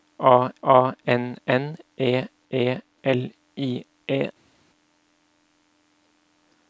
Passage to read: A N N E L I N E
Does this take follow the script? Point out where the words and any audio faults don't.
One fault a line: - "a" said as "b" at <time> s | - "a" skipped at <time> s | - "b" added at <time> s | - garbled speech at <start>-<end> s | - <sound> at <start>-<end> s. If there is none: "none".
- "a" added at 0.6 s
- "E" added at 2.5 s
- "N" skipped at 3.8 s